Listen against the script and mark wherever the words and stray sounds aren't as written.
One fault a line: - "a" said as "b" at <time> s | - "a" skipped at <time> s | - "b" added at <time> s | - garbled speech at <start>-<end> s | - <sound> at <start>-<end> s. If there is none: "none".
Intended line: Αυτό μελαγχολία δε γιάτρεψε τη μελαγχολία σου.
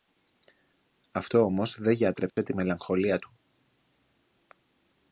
- "μελαγχολία" said as "όμως" at 1.4 s
- dropout at 2.3-2.4 s
- "σου" said as "του" at 3.2 s